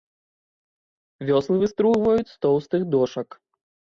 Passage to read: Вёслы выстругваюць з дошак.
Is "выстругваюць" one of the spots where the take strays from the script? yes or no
no